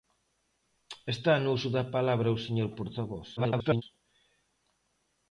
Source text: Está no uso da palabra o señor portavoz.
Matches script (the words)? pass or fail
fail